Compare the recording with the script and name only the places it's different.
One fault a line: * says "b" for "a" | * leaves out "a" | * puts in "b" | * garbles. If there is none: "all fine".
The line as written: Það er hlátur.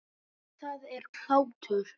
all fine